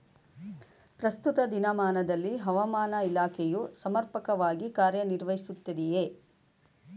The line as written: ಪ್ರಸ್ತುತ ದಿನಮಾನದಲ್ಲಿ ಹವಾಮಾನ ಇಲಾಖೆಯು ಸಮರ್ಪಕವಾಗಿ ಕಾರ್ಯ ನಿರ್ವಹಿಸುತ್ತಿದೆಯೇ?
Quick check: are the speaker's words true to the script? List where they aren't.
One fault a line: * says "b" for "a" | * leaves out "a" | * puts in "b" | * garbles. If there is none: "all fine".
all fine